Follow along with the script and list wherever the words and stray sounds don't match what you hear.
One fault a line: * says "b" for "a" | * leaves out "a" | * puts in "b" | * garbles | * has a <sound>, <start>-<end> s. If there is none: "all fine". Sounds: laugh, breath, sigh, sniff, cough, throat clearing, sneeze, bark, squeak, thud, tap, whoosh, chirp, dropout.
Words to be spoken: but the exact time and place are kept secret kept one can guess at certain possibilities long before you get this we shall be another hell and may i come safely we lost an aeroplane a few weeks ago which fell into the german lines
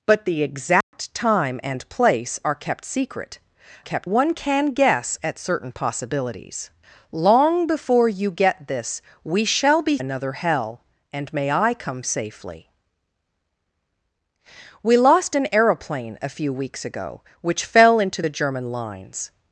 * has a dropout, 0.8-0.9 s